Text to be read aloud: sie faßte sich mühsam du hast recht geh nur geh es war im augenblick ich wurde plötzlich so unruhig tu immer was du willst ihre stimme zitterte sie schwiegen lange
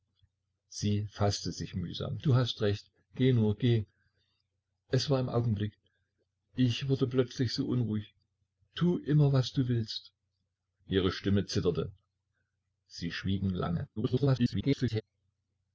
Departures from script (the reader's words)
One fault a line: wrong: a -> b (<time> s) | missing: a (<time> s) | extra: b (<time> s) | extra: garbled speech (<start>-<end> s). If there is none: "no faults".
extra: garbled speech (14.0-15.0 s)